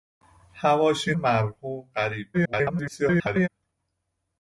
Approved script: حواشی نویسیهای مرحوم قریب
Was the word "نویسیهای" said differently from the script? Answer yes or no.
yes